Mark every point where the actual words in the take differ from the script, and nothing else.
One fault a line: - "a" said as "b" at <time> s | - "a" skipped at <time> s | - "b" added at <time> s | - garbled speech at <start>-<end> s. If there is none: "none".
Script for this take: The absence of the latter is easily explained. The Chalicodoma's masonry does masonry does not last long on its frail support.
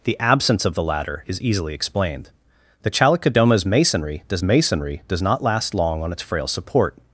none